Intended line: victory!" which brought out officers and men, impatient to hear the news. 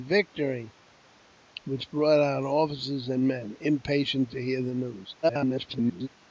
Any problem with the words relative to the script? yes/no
yes